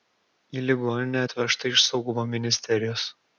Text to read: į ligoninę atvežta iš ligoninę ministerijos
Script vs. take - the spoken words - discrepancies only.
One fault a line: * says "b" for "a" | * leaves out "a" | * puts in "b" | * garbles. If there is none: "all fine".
* says "saugumo" for "ligoninę"